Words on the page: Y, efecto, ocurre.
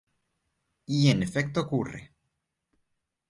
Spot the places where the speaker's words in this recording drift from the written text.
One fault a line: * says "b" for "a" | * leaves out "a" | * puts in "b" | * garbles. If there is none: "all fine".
* puts in "en"